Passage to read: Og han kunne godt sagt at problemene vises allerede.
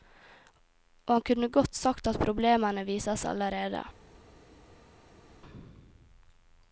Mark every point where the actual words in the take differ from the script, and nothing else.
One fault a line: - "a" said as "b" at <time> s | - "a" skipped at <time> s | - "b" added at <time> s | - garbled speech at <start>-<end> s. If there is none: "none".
none